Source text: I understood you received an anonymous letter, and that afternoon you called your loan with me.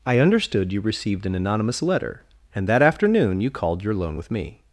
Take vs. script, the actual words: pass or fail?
pass